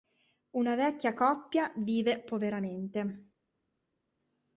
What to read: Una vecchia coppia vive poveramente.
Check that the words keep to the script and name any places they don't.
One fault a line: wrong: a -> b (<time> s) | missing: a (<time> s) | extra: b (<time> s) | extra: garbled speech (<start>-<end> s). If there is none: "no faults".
no faults